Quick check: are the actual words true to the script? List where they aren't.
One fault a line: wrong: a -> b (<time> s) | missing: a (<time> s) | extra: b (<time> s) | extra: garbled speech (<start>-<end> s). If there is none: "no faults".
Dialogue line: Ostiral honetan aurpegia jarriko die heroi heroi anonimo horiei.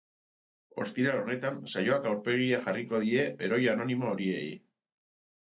extra: saioak (1.7 s)
missing: heroi (3.6 s)